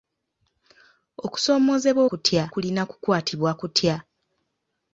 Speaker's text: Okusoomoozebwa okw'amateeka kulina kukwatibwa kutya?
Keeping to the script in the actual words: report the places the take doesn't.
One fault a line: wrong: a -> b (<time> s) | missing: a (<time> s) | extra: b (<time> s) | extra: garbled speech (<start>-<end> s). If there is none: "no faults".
wrong: okw'amateeka -> kutya (2.1 s)